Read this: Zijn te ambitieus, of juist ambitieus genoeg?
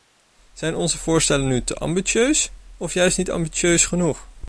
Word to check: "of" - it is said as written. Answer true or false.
true